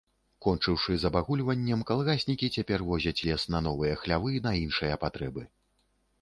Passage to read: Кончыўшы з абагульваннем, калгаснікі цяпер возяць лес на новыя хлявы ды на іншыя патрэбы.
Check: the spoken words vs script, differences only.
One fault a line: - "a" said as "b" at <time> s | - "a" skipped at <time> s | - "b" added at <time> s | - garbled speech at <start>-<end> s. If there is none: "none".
- "ды" skipped at 4.3 s